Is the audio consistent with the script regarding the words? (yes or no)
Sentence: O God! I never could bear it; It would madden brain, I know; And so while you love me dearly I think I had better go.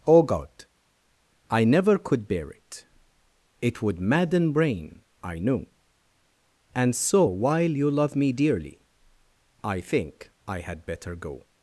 yes